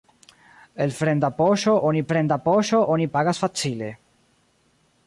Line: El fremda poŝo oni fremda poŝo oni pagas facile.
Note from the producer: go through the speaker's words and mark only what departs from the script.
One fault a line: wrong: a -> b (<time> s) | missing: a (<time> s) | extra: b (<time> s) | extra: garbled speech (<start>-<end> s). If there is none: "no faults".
no faults